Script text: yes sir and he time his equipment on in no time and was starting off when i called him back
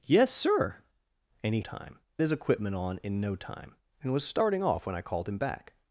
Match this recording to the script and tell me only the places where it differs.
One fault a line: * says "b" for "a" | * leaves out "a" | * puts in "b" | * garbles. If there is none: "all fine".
all fine